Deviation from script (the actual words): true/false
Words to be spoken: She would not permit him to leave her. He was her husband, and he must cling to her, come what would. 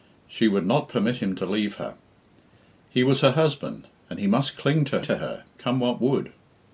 true